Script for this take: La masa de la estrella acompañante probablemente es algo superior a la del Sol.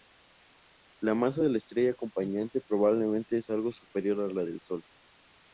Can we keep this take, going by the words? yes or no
yes